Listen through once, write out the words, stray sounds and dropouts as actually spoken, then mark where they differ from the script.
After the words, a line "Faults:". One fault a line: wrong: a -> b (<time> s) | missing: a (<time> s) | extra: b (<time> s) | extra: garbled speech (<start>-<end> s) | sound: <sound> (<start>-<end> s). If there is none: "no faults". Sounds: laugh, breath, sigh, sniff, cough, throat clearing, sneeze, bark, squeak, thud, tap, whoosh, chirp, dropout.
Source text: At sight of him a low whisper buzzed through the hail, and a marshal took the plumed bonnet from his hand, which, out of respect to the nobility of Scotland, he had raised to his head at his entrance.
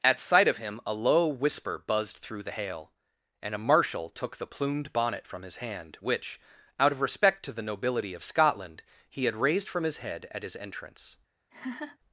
At sight of him a low whisper buzzed through the hail, and a marshal took the plumed bonnet from his hand, which, out of respect to the nobility of Scotland, he had raised from his head at his entrance.
Faults:
wrong: to -> from (9.7 s)
sound: laugh (11.5-12.0 s)